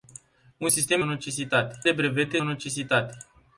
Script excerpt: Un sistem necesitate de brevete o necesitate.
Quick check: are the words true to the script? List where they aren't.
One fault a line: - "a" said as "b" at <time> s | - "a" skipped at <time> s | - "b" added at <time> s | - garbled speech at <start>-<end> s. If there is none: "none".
none